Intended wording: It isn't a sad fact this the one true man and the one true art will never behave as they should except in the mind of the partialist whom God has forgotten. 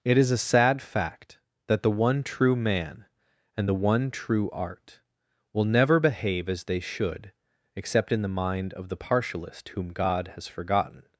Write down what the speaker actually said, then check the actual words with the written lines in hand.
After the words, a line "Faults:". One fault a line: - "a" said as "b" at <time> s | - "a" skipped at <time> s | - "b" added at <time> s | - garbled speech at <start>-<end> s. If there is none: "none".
It is a sad fact that the one true man and the one true art will never behave as they should except in the mind of the partialist whom God has forgotten.
Faults:
- "isn't" said as "is" at 0.2 s
- "this" said as "that" at 1.7 s